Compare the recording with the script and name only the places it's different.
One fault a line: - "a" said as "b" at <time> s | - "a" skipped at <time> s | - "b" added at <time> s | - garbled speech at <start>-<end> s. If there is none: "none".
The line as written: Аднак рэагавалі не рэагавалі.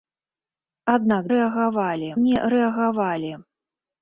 none